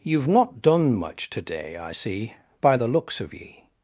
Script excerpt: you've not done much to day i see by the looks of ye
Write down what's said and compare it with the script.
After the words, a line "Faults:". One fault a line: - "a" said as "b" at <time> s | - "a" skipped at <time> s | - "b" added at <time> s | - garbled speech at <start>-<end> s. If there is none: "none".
you've not done much to day i see by the looks of ye
Faults:
none